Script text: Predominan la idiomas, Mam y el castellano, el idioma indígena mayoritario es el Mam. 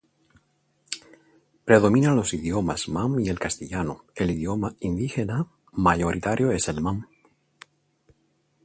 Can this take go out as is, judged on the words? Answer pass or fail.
fail